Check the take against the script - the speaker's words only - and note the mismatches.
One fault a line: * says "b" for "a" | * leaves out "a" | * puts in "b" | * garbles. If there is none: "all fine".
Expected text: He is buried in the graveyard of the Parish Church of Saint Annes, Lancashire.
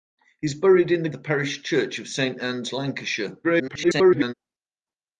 * leaves out "graveyard of"
* garbles